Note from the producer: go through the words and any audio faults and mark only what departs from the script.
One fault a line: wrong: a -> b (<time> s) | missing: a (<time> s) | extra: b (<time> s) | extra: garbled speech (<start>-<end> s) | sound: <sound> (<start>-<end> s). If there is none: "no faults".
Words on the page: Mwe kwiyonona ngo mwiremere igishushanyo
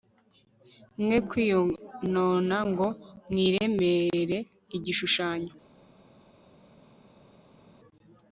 no faults